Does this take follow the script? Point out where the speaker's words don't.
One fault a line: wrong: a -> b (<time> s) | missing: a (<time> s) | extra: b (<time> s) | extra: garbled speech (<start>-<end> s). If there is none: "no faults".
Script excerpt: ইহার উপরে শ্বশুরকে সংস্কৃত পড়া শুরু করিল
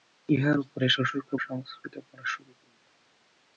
no faults